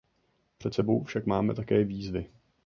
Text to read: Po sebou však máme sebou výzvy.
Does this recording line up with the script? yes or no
no